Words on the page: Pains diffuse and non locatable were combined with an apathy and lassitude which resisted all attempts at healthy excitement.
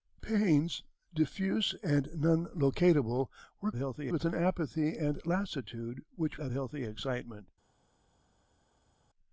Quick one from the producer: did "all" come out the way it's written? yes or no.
no